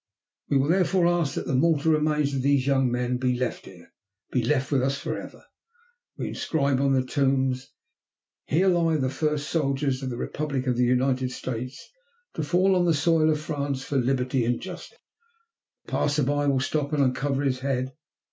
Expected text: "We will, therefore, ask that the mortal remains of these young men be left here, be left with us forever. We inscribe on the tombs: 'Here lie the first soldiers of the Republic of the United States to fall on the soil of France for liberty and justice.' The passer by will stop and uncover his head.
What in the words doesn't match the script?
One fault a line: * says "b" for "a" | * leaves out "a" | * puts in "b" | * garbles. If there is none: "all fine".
all fine